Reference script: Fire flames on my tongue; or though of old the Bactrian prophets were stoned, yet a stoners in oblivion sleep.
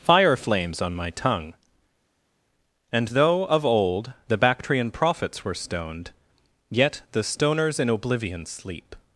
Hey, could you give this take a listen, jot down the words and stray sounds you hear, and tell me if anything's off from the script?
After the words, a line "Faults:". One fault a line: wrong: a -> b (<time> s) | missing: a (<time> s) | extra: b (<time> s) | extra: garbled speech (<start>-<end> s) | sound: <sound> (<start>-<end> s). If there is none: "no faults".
Fire flames on my tongue; and though of old the Bactrian prophets were stoned, yet the stoners in oblivion sleep.
Faults:
wrong: or -> and (2.9 s)
wrong: a -> the (7.1 s)